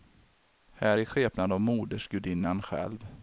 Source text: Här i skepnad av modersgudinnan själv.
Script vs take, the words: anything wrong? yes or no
no